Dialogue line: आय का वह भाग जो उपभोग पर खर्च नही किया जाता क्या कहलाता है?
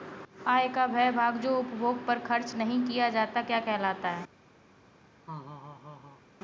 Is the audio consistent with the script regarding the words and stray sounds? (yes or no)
no